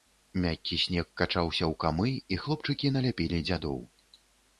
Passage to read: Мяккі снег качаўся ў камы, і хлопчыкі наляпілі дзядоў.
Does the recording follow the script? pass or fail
pass